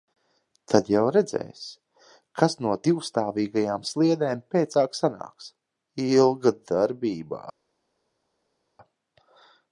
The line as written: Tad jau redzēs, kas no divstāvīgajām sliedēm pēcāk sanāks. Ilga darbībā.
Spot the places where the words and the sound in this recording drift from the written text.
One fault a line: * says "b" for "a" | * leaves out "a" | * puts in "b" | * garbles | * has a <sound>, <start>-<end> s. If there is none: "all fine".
all fine